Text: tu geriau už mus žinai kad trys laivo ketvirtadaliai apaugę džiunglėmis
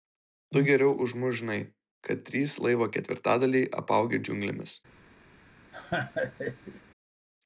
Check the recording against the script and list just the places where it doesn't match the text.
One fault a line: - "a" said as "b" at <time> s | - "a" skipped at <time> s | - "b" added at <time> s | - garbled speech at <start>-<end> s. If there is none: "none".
none